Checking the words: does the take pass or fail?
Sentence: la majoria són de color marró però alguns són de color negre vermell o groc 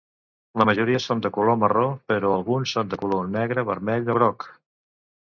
pass